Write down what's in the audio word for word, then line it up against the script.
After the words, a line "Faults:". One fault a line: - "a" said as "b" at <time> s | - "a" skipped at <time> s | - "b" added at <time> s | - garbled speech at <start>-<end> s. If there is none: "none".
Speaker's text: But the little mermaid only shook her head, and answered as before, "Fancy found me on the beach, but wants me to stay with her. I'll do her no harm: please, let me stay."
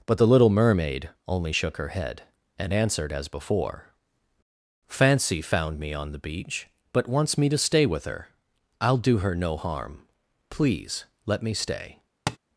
But the little mermaid only shook her head, and answered as before, "Fancy found me on the beach, but wants me to stay with her. I'll do her no harm: please, let me stay."
Faults:
none